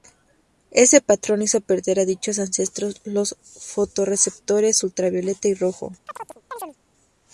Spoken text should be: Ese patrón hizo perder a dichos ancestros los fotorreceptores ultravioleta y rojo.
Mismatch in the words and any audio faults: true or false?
true